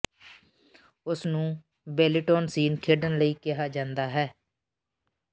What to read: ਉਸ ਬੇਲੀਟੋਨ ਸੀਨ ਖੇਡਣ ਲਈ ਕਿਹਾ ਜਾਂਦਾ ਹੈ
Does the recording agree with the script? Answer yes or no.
no